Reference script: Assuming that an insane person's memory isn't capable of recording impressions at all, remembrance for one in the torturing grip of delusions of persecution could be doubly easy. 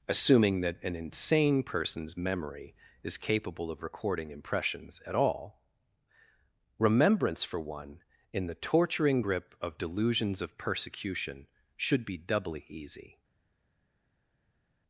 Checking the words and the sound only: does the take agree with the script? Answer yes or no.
no